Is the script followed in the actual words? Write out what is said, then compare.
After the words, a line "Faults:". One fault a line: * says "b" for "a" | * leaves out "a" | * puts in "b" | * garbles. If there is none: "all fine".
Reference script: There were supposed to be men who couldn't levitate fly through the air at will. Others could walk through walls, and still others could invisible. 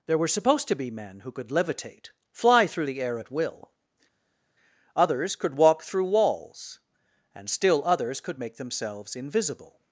There were supposed to be men who could levitate fly through the air at will. Others could walk through walls, and still others could make themselves invisible.
Faults:
* says "could" for "couldn't"
* puts in "make themselves"